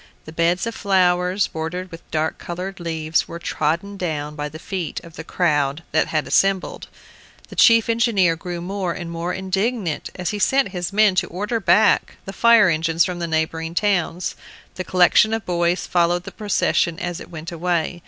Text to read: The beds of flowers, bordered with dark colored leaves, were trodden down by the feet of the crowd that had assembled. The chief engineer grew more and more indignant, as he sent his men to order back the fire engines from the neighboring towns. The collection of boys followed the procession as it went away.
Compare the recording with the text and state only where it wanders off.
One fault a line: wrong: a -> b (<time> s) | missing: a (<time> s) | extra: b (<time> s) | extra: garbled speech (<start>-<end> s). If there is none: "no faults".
no faults